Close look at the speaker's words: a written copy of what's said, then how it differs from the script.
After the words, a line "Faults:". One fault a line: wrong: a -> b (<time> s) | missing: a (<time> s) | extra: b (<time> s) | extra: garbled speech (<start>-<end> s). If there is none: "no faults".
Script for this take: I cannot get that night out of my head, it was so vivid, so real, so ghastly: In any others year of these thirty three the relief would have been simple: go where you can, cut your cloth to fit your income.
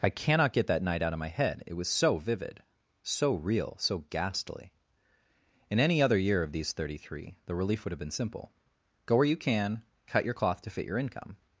I cannot get that night out of my head, it was so vivid, so real, so ghastly: In any other year of these thirty three the relief would have been simple: go where you can, cut your cloth to fit your income.
Faults:
wrong: others -> other (6.0 s)